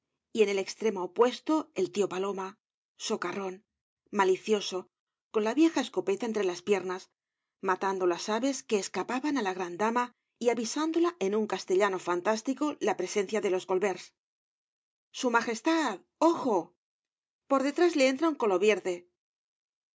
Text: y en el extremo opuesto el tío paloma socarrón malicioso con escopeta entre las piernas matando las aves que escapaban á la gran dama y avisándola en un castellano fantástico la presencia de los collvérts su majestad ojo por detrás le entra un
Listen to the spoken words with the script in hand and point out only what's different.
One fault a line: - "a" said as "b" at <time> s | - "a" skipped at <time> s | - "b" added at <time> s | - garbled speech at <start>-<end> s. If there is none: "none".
- "la vieja" added at 5.4 s